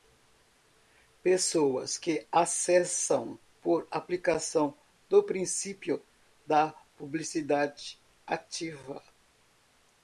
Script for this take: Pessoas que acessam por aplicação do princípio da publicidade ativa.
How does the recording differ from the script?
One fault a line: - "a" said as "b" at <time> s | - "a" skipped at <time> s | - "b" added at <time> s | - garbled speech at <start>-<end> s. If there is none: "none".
none